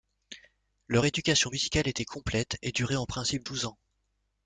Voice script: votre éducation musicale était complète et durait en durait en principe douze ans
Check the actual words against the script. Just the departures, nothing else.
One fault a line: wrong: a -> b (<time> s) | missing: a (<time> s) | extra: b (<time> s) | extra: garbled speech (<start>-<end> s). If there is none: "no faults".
wrong: votre -> leur (0.9 s)
missing: durait en (3.1 s)